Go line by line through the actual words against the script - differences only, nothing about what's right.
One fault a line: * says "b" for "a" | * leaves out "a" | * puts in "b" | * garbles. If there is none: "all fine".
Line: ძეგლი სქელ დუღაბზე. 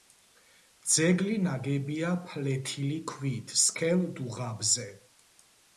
* puts in "ნაგებია ფლეთილი ქვით"